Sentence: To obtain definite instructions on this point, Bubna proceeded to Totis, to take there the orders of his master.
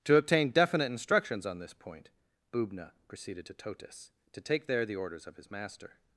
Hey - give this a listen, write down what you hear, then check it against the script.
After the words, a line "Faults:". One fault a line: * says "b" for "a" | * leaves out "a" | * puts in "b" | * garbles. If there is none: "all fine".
To obtain definite instructions on this point, Bubna proceeded to Totis, to take there the orders of his master.
Faults:
all fine